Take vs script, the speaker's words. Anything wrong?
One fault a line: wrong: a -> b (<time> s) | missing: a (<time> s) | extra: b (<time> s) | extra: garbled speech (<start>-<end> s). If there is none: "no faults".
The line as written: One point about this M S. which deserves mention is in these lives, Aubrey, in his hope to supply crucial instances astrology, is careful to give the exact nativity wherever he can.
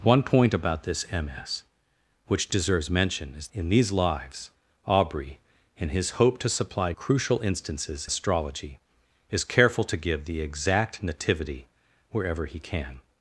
no faults